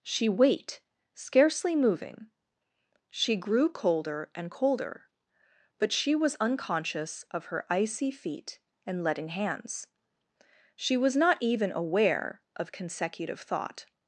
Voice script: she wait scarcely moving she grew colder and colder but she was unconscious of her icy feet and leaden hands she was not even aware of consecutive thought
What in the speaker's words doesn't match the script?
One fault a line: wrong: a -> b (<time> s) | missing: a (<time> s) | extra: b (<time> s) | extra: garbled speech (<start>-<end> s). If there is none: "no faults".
no faults